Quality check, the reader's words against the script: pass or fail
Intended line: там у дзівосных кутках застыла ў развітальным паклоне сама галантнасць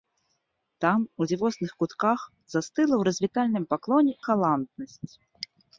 fail